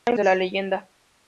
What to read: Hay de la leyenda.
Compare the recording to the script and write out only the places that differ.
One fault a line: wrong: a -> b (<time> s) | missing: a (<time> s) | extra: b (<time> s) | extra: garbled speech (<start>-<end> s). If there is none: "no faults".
no faults